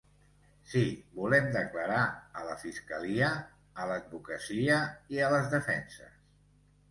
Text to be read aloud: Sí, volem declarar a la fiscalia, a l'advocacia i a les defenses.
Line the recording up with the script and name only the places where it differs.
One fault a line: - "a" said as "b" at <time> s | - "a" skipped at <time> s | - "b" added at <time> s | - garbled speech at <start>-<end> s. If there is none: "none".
none